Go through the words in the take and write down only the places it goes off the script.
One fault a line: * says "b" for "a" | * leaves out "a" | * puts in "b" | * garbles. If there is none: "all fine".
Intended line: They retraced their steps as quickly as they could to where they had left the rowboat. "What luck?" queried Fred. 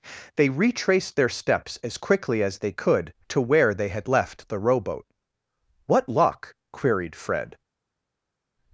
all fine